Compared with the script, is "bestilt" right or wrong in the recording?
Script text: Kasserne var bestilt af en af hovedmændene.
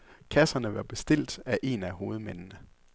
right